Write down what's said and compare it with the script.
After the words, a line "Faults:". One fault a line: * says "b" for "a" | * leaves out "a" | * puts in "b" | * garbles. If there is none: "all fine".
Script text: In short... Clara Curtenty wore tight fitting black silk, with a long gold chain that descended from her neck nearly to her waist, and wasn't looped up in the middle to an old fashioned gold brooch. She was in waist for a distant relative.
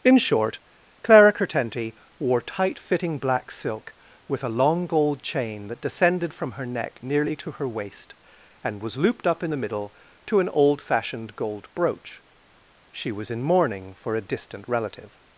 In short... Clara Curtenty wore tight fitting black silk, with a long gold chain that descended from her neck nearly to her waist, and was looped up in the middle to an old fashioned gold brooch. She was in mourning for a distant relative.
Faults:
* says "was" for "wasn't"
* says "mourning" for "waist"